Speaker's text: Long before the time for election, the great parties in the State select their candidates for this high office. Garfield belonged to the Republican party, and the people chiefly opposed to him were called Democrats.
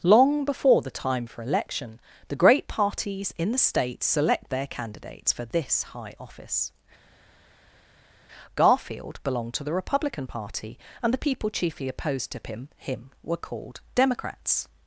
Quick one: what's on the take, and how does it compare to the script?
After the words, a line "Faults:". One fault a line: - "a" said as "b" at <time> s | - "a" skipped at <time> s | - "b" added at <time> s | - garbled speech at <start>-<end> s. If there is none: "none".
Long before the time for election, the great parties in the State select their candidates for this high office. Garfield belonged to the Republican party, and the people chiefly opposed to him him were called Democrats.
Faults:
- "him" added at 12.8 s